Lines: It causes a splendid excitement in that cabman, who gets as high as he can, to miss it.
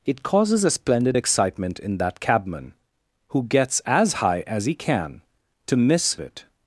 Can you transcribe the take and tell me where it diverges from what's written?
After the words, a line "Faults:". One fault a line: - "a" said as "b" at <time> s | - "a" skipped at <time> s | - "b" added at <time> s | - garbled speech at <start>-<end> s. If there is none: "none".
It causes a splendid excitement in that cabman, who gets as high as he can, to miss it.
Faults:
none